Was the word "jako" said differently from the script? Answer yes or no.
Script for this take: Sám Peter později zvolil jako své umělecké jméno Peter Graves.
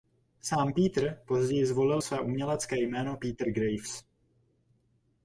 yes